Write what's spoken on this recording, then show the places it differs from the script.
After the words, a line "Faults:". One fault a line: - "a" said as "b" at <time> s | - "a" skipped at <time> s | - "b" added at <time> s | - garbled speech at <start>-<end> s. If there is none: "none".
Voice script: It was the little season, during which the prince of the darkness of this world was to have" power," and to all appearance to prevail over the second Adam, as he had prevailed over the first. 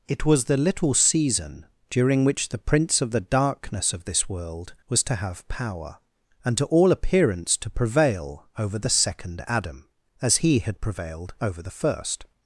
It was the little season, during which the prince of the darkness of this world was to have" power," and to all appearance to prevail over the second Adam, as he had prevailed over the first.
Faults:
none